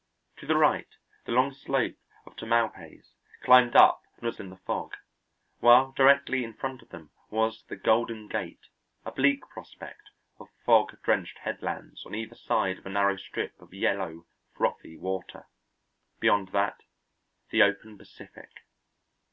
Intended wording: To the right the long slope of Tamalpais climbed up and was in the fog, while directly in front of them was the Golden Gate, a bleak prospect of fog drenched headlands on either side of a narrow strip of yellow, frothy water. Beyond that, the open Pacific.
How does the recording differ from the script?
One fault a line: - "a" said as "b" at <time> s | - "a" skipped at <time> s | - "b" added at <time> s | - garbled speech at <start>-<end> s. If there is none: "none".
none